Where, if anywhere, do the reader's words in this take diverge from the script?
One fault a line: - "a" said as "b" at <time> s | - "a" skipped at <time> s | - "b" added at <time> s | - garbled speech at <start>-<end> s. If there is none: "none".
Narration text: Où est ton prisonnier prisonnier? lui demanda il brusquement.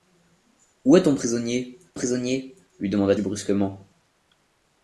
none